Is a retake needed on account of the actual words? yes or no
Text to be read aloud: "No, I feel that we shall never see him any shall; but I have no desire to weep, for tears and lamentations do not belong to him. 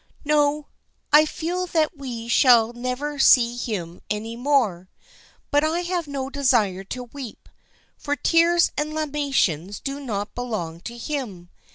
yes